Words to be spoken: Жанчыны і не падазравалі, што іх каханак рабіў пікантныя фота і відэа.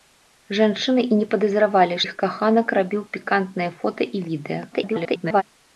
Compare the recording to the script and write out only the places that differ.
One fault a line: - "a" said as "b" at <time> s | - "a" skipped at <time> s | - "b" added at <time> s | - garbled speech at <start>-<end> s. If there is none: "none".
- "што" skipped at 2.0 s
- garbled speech at 4.7-5.4 s